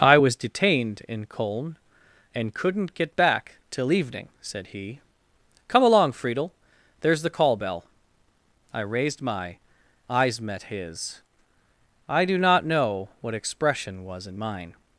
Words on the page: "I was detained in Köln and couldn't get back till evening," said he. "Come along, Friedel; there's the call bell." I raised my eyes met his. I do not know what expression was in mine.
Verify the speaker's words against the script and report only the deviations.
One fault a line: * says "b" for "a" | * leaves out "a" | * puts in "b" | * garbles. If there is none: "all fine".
all fine